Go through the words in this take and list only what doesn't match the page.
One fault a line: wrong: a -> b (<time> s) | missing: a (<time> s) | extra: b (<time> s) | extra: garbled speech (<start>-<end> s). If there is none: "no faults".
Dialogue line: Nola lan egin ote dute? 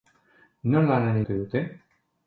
missing: egin (1.2 s)